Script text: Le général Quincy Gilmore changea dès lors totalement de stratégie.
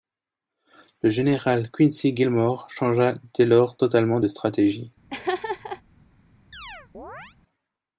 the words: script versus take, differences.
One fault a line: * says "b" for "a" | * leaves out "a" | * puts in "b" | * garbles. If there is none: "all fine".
all fine